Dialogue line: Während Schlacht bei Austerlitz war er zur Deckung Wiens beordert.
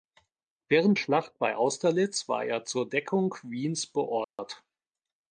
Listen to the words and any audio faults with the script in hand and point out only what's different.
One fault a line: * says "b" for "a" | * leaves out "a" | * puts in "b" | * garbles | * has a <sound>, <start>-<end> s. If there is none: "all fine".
* has a dropout, 4.2-4.4 s